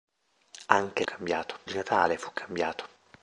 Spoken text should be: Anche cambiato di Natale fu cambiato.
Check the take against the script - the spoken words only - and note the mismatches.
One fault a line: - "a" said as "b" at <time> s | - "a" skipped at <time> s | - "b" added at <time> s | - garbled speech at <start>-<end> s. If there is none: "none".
none